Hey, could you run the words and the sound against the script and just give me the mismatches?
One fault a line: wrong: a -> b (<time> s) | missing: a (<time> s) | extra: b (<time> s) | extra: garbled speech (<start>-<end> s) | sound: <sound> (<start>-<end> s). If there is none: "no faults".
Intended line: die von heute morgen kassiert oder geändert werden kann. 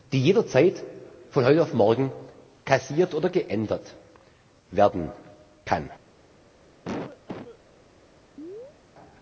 extra: jederzeit (0.2 s)
extra: auf (1.6 s)
sound: cough (6.8-7.6 s)
sound: chirp (8.4-8.8 s)